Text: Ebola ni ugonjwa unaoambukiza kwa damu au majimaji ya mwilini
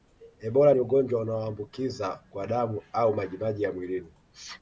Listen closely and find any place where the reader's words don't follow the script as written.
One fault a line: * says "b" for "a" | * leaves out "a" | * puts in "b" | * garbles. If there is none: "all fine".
all fine